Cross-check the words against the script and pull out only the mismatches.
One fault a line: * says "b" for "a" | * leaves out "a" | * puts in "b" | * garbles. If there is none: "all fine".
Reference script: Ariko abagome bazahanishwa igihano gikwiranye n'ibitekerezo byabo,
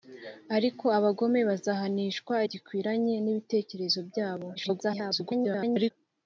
* leaves out "igihano"
* garbles